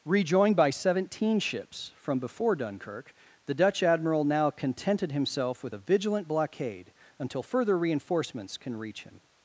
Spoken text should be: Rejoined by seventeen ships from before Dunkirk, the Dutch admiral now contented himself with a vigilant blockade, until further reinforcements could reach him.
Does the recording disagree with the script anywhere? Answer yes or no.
yes